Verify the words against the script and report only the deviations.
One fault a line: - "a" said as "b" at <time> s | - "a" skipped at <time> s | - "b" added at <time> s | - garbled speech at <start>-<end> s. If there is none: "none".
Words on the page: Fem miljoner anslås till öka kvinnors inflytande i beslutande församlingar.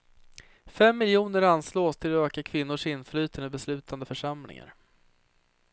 - "att" added at 2.1 s